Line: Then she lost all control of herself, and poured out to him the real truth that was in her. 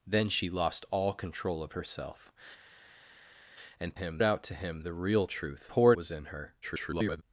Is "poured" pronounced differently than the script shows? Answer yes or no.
yes